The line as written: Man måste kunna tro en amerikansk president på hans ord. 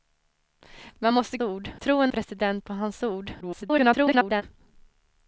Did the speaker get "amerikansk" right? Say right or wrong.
wrong